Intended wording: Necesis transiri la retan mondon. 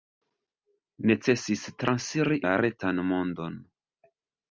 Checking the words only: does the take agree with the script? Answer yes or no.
yes